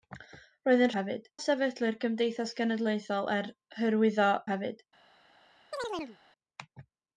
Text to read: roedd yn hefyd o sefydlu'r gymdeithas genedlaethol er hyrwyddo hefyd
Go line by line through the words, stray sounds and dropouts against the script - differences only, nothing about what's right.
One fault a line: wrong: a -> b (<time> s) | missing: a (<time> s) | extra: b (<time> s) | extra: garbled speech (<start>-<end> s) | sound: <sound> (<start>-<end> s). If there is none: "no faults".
sound: chirp (5.7-6.2 s)